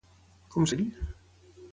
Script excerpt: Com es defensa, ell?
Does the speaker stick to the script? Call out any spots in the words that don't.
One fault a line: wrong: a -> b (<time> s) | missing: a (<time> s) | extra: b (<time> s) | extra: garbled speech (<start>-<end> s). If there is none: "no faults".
missing: defensa (0.7 s)